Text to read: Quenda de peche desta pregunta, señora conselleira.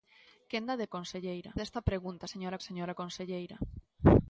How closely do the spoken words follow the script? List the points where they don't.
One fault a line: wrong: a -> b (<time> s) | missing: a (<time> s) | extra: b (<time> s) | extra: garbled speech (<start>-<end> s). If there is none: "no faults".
wrong: peche -> conselleira (0.9 s)
extra: señora (2.7 s)